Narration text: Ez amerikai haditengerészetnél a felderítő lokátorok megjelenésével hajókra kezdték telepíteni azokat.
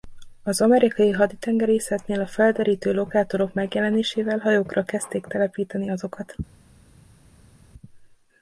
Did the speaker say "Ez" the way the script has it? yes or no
no